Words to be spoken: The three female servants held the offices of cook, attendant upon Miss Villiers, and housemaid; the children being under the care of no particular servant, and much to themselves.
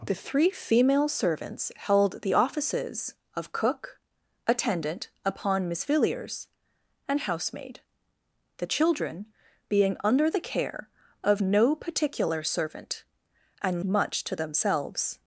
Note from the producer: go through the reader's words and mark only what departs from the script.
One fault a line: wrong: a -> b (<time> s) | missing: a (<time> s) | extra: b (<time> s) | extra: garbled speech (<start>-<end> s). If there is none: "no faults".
no faults